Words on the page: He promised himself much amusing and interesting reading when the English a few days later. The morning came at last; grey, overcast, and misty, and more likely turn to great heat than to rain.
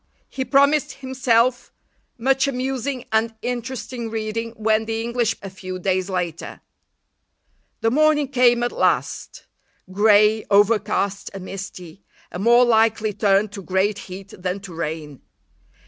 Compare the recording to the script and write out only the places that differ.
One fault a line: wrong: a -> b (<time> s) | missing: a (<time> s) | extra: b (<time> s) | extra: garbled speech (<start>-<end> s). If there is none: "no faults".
no faults